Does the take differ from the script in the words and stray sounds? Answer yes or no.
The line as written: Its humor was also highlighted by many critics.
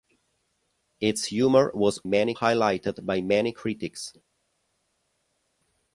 yes